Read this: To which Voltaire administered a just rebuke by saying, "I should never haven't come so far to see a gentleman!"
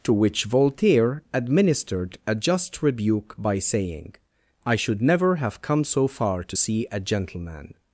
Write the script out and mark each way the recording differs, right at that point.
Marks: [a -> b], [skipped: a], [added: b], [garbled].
To which Voltaire administered a just rebuke by saying, "I should never [haven't -> have] come so far to see a gentleman!"